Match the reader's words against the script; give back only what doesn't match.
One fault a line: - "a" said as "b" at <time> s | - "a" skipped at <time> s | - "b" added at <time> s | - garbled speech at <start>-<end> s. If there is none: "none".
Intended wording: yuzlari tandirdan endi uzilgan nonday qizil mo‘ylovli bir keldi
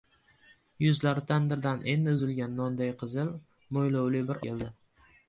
none